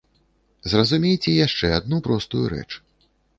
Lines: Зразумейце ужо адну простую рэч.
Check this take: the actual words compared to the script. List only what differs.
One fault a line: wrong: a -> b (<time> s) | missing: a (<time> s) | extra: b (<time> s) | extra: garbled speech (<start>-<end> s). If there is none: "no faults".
wrong: ужо -> яшчэ (1.5 s)